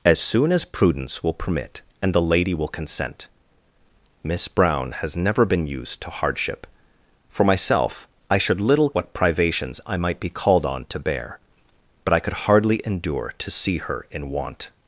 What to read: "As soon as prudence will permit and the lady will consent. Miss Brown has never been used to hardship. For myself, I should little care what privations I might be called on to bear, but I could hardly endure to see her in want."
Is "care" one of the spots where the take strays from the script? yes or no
yes